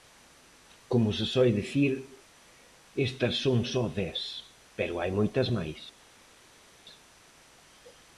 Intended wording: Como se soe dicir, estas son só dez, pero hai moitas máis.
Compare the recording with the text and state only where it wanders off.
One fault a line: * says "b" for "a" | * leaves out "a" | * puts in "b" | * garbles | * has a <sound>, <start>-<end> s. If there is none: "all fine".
all fine